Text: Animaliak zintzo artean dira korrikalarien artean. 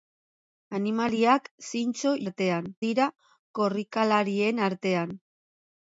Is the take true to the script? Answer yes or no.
yes